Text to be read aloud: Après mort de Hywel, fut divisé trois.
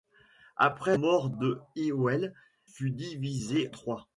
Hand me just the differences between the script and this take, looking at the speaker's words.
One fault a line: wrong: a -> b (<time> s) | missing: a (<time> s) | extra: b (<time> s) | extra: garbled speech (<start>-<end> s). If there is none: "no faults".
no faults